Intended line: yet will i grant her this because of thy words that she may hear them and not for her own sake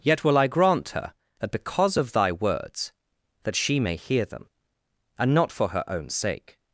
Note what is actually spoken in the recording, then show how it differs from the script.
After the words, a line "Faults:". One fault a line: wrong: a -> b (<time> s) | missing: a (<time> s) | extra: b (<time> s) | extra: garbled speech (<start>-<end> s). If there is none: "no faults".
yet will i grant her that because of thy words that she may hear them and not for her own sake
Faults:
wrong: this -> that (1.4 s)